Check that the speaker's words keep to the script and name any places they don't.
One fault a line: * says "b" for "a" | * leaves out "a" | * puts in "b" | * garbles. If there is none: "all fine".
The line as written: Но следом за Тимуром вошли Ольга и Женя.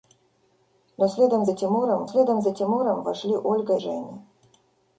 * puts in "следом за Тимуром"
* leaves out "и"